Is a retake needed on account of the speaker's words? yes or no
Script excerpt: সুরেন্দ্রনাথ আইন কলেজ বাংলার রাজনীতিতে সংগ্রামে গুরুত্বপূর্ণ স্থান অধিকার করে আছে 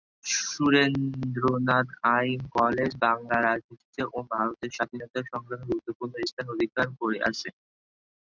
yes